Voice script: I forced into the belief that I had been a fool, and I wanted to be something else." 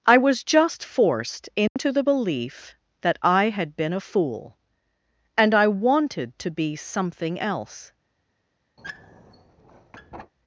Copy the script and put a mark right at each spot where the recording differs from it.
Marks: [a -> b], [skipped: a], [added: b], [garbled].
I [added: was just] forced into the belief that I had been a fool, and I wanted to be something else."